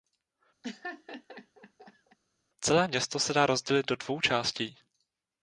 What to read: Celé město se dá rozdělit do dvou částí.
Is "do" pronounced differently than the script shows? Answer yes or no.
no